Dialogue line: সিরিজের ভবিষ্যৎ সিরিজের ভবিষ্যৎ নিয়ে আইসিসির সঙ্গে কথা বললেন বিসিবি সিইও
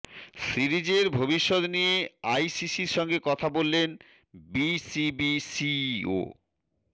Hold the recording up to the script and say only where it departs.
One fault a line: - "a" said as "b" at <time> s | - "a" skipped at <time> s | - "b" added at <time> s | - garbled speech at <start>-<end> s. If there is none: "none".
- "সিরিজের ভবিষ্যৎ" skipped at 1.6 s